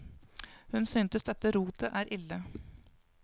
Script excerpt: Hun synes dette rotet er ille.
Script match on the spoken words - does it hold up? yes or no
yes